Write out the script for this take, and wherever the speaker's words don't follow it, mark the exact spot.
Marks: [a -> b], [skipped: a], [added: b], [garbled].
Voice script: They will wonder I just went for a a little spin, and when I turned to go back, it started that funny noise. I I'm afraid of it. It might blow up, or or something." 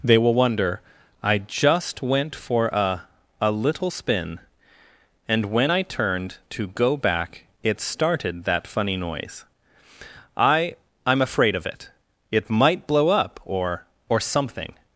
They will wonder I just went for a a little spin, and when I turned to go back, it started that funny noise. I I'm afraid of it. It might blow up, or or something."